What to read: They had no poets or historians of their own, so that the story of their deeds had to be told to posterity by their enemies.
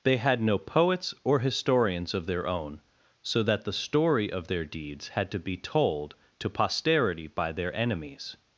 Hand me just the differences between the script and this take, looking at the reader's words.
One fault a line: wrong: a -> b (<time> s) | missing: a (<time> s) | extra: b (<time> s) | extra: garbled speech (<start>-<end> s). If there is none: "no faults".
no faults